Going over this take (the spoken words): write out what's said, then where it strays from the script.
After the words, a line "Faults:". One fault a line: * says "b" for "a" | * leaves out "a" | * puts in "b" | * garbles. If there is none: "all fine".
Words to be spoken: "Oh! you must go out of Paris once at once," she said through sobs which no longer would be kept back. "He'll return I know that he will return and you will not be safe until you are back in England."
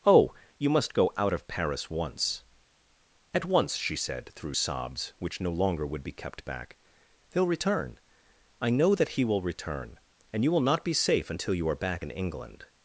"Oh! you must go out of Paris once at once," she said through sobs which no longer would be kept back. "He'll return I know that he will return and you will not be safe until you are back in England."
Faults:
all fine